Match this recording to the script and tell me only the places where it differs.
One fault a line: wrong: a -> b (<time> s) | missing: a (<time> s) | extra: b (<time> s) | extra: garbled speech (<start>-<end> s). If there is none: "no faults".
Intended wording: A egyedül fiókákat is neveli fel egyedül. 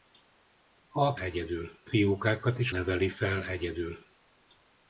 no faults